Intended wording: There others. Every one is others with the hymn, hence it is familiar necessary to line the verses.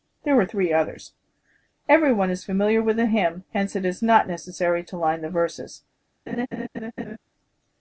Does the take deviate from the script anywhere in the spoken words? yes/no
yes